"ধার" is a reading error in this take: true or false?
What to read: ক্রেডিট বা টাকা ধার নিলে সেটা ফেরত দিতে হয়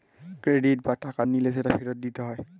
true